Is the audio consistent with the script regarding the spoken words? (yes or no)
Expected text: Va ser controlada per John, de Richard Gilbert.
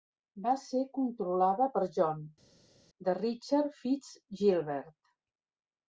no